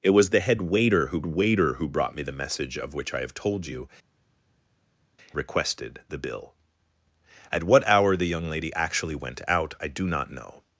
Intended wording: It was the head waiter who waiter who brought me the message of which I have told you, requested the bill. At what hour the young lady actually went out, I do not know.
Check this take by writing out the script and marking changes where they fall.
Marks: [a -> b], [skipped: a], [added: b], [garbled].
It was the head waiter who waiter who brought me the message of which I have told you, requested the bill. At what hour the young lady actually went out, I do not know.